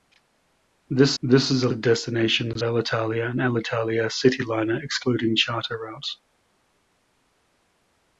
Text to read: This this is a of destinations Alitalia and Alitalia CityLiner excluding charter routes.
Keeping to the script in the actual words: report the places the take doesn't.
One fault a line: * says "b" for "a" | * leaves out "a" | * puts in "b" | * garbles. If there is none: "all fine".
all fine